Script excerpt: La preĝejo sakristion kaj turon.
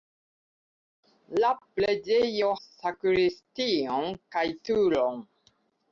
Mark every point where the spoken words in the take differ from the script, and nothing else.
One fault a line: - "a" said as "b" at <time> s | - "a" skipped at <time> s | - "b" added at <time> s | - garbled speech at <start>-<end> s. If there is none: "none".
none